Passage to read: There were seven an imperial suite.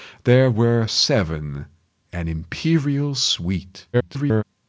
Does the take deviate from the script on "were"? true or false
false